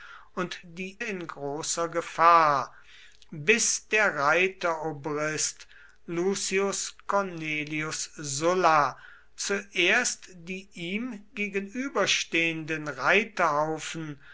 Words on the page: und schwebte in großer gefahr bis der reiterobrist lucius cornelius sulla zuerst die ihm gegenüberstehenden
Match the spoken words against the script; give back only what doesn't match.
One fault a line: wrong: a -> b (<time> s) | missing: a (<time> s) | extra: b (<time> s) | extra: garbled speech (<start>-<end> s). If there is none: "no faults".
wrong: schwebte -> die (0.6 s)